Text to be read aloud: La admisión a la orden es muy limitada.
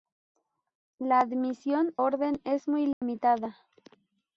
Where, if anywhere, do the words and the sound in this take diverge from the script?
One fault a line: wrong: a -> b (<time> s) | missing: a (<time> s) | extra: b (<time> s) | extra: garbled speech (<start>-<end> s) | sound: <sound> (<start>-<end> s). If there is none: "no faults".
missing: a la (1.9 s)
sound: dropout (2.9-3.0 s)